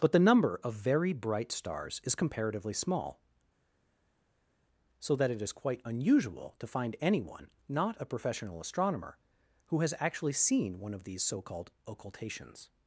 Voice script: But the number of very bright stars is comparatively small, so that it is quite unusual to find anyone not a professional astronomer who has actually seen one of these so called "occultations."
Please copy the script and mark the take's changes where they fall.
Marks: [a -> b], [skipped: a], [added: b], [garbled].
But the number of very bright stars is comparatively small, so that it is quite unusual to find anyone not a professional astronomer who has actually seen one of these so called "occultations."